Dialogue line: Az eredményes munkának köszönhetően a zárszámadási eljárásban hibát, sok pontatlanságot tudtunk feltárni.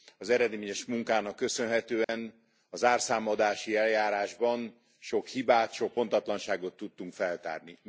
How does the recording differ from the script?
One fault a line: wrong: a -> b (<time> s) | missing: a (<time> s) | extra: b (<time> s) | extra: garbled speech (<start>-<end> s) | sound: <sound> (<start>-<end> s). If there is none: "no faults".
sound: dropout (2.0-2.1 s)
extra: sok (5.0 s)